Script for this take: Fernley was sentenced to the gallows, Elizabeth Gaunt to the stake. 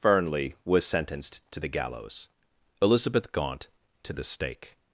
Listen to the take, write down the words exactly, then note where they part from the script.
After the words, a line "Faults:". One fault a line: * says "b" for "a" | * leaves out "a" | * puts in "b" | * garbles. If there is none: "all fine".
Fernley was sentenced to the gallows, Elizabeth Gaunt to the stake.
Faults:
all fine